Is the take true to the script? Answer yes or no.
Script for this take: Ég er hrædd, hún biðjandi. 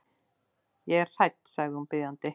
no